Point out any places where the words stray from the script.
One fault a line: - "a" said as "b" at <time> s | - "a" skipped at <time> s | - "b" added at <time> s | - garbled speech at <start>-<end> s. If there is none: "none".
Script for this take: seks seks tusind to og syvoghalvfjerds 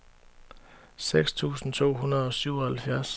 - "seks" skipped at 1.3 s
- "hundrede" added at 1.9 s